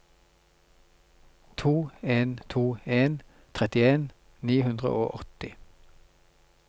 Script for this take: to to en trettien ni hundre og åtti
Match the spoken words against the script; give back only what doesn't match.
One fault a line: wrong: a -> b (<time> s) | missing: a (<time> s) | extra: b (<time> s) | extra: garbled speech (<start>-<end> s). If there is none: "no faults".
extra: en (2.0 s)